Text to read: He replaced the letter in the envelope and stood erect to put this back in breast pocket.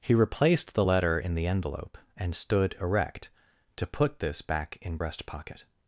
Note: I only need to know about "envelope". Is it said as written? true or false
true